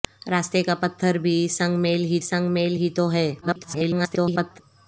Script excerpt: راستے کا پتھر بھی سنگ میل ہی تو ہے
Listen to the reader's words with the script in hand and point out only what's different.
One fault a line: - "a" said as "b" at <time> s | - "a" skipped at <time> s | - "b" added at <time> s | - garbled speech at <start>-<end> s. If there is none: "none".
- "سنگ میل ہی" added at 2.2 s
- garbled speech at 3.4-4.6 s